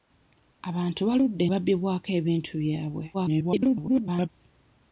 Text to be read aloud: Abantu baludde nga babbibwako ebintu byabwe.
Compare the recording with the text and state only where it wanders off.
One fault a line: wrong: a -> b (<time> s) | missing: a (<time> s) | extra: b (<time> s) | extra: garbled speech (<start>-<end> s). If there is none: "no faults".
missing: nga (1.4 s)
extra: garbled speech (3.1-4.3 s)